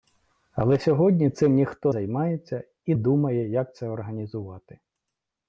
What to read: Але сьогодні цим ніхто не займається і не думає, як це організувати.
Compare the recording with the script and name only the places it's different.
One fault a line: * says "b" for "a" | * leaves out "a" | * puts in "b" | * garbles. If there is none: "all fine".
* leaves out "не"
* leaves out "не"